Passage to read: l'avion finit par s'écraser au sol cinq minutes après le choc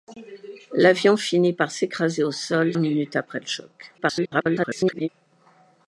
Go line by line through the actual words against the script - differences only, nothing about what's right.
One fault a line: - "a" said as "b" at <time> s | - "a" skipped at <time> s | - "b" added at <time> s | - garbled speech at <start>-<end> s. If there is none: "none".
- "cinq" skipped at 2.7 s
- garbled speech at 4.0-5.1 s